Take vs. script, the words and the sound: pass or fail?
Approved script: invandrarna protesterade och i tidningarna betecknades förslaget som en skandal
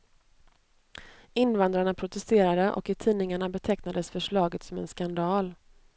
pass